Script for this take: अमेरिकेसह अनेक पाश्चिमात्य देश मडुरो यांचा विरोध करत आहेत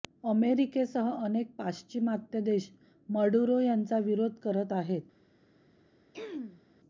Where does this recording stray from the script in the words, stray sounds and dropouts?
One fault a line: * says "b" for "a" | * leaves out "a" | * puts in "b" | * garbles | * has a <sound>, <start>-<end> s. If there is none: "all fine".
* has a throat clearing, 6.1-6.6 s